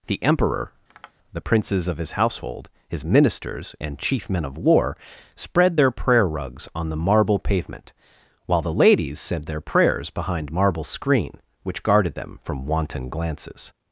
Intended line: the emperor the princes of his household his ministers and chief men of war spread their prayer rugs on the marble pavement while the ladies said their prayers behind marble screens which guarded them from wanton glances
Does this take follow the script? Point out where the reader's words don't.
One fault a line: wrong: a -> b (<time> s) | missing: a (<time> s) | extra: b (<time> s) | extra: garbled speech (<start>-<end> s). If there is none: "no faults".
wrong: screens -> screen (10.8 s)